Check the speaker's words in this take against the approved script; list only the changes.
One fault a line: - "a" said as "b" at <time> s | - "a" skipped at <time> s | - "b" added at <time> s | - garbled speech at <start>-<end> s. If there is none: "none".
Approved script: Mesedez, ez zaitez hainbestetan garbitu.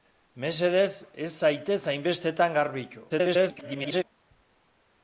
- garbled speech at 3.1-4.0 s